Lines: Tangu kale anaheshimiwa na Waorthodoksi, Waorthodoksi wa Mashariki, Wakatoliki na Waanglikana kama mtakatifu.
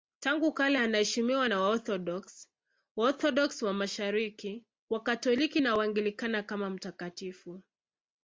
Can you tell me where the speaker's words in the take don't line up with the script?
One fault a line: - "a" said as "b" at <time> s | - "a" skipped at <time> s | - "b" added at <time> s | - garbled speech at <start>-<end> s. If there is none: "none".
none